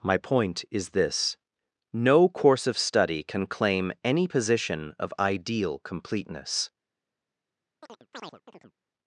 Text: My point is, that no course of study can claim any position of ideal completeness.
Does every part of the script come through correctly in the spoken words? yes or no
no